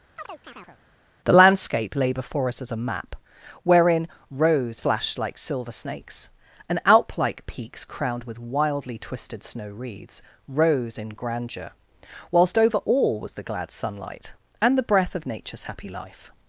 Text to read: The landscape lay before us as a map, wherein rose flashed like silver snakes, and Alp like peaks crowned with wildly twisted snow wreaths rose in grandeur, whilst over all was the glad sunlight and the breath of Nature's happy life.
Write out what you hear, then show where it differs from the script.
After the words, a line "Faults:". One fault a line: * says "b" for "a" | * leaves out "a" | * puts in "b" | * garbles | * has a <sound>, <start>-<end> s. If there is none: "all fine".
The landscape lay before us as a map, wherein rose flashed like silver snakes, and Alp like peaks crowned with wildly twisted snow wreaths rose in grandeur, whilst over all was the glad sunlight and the breath of Nature's happy life.
Faults:
* has a chirp, 0.2-0.8 s